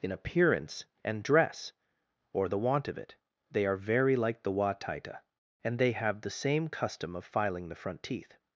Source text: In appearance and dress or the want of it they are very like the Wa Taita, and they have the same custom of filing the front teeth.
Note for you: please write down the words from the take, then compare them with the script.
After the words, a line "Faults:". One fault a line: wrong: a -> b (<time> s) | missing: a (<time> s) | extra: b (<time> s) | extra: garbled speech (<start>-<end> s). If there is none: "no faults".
In appearance and dress or the want of it they are very like the Wa Taita, and they have the same custom of filing the front teeth.
Faults:
no faults